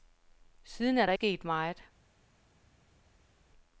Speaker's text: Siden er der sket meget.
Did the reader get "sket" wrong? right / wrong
right